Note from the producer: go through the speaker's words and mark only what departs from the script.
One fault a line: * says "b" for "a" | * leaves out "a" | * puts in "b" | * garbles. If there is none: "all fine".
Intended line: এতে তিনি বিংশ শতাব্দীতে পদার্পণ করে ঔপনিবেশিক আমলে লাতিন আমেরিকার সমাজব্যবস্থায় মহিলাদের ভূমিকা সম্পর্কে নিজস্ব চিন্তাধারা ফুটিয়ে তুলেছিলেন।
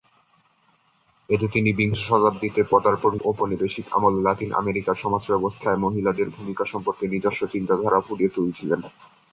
* leaves out "করে"